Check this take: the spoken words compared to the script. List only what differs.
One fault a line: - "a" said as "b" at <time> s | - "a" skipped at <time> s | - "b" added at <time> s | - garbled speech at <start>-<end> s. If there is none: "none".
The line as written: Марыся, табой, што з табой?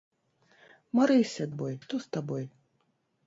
none